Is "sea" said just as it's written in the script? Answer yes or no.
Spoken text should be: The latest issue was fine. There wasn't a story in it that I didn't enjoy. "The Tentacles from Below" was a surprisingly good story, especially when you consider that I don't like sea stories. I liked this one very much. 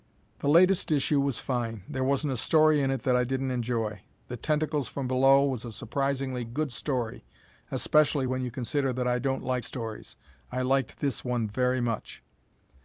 no